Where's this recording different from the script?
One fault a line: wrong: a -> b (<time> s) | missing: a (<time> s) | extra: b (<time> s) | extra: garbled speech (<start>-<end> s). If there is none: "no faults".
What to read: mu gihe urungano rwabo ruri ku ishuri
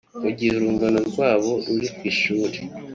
no faults